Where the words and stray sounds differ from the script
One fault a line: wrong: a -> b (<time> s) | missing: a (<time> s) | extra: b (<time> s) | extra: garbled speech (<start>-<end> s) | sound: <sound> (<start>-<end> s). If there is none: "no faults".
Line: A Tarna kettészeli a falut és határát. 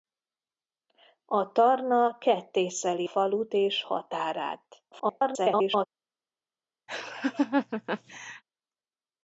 missing: a (3.1 s)
extra: garbled speech (4.9-5.9 s)
sound: laugh (6.9-8.4 s)